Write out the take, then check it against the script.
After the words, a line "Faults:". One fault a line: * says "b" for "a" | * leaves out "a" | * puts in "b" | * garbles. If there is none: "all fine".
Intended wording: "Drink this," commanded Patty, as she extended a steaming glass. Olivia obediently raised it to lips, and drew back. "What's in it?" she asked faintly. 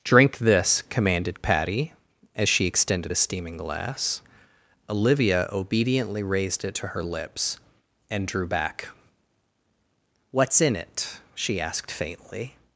"Drink this," commanded Patty, as she extended a steaming glass. Olivia obediently raised it to her lips, and drew back. "What's in it?" she asked faintly.
Faults:
* puts in "her"